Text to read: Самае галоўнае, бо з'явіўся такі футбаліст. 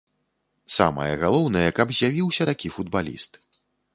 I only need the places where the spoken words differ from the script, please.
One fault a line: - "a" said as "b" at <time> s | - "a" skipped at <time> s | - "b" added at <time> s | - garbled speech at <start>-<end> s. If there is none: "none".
- "бо" said as "каб" at 1.8 s